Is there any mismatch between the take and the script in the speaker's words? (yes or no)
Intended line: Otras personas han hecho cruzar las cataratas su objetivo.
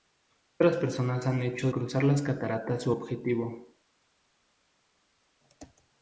no